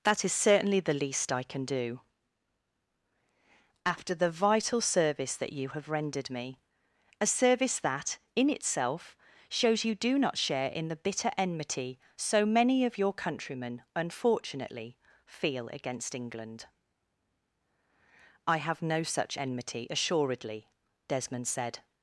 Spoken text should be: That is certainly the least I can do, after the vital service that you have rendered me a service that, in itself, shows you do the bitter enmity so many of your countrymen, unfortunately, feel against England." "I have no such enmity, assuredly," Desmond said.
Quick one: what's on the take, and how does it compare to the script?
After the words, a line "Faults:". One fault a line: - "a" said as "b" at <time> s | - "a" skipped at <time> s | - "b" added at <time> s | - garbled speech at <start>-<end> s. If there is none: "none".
That is certainly the least I can do, after the vital service that you have rendered me a service that, in itself, shows you do not share in the bitter enmity so many of your countrymen, unfortunately, feel against England." "I have no such enmity, assuredly," Desmond said.
Faults:
- "not share in" added at 10.2 s